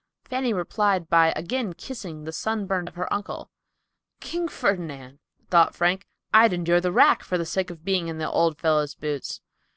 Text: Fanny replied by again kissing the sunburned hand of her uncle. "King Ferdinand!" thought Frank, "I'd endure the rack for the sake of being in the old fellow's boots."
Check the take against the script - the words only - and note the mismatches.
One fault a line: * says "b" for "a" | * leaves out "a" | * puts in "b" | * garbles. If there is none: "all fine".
* leaves out "hand"